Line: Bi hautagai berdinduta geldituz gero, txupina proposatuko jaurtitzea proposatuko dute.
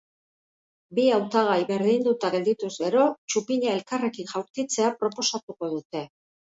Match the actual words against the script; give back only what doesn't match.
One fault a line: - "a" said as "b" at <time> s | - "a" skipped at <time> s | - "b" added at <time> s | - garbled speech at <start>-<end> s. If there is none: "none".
- "proposatuko" said as "elkarrekin" at 3.8 s